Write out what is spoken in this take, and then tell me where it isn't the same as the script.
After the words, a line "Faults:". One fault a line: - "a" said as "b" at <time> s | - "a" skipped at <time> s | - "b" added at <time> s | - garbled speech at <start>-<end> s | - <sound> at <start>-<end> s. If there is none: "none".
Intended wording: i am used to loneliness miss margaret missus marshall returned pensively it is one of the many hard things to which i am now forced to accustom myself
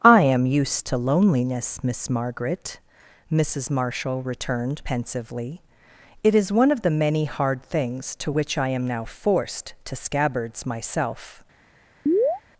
i am used to loneliness miss margaret missus marshall returned pensively it is one of the many hard things to which i am now forced to scabbards myself
Faults:
- "accustom" said as "scabbards" at 10.0 s
- chirp at 12.1-12.4 s